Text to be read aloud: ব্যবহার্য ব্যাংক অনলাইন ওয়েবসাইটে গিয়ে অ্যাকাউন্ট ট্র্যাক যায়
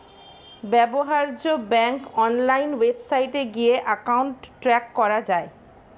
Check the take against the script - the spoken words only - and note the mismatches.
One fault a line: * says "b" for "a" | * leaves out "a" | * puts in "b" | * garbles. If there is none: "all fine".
* puts in "করা"